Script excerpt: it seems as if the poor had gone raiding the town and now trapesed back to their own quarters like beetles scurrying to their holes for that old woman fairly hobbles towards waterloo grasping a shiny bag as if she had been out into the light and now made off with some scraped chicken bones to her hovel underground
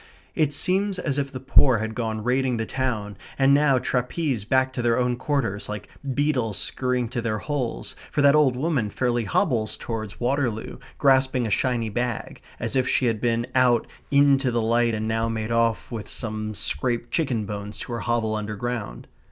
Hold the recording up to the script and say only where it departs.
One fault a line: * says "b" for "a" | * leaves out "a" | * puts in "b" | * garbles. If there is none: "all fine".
all fine